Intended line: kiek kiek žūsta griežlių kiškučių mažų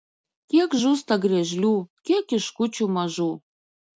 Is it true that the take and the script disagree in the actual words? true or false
true